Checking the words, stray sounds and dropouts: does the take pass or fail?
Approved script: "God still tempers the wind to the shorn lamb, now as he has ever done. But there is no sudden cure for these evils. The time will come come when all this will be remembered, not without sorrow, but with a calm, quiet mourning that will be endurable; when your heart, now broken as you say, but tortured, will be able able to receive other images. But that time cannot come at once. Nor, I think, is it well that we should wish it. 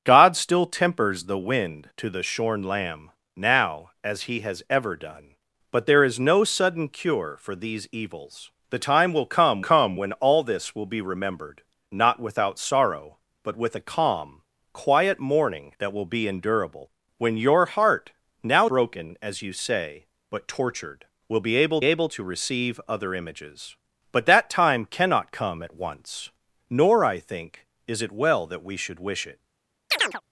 fail